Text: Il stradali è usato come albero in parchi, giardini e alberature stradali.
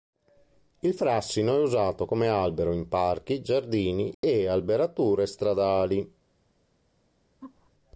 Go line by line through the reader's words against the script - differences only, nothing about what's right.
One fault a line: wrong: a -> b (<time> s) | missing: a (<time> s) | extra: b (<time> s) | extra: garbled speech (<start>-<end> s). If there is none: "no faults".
wrong: stradali -> frassino (0.9 s)